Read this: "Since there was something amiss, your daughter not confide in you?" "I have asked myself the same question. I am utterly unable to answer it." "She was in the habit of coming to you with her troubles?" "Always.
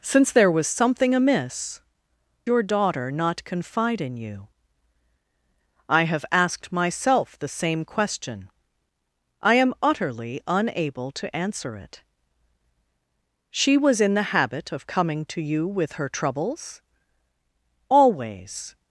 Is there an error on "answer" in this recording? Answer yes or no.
no